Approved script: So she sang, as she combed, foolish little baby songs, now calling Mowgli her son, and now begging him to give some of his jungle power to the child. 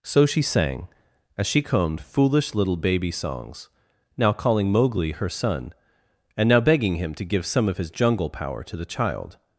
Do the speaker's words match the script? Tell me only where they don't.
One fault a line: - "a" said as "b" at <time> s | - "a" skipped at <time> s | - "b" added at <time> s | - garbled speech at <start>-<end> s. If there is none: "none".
none